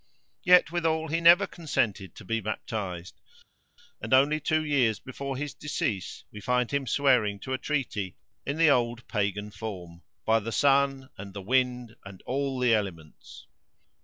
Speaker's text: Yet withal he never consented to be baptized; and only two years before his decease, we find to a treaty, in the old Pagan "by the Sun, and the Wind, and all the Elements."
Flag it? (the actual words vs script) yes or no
yes